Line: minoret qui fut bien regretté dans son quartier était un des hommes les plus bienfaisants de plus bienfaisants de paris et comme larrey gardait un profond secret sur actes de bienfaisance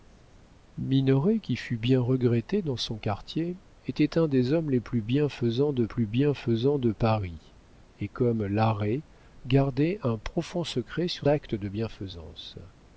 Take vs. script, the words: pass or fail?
pass